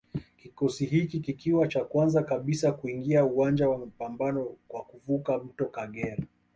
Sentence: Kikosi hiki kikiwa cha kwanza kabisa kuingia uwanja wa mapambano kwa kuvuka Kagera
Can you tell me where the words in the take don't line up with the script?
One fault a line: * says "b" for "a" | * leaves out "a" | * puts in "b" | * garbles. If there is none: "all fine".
* puts in "mto"